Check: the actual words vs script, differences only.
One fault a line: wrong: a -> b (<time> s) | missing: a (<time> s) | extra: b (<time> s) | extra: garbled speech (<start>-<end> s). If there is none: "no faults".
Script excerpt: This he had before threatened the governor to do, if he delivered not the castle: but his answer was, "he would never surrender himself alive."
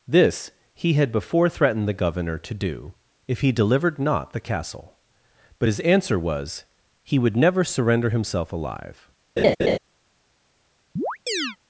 no faults